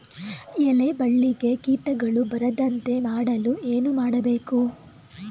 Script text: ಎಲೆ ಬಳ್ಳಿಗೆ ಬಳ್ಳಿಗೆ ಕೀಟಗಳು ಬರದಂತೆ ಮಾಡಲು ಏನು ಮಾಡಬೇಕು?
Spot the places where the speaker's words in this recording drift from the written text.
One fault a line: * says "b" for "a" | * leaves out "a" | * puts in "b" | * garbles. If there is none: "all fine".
* leaves out "ಬಳ್ಳಿಗೆ"